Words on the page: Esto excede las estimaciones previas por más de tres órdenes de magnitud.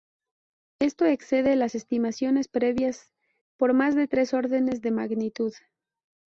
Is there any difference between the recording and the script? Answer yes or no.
no